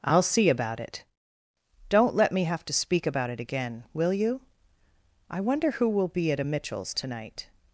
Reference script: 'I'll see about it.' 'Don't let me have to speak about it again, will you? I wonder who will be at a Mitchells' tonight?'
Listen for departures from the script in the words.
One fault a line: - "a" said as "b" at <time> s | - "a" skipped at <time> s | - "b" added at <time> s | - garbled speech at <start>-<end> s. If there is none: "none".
none